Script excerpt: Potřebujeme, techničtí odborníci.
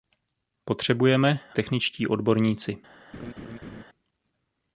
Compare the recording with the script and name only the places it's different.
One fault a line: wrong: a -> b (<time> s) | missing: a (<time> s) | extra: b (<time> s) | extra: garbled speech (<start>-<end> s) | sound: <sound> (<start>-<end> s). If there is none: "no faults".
sound: laugh (3.1-3.8 s)